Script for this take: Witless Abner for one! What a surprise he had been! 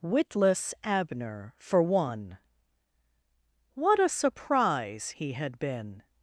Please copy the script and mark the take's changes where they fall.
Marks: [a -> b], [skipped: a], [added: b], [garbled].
Witless Abner for one! What a surprise he had been!